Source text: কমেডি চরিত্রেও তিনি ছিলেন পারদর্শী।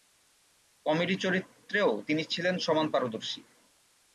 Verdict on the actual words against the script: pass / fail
fail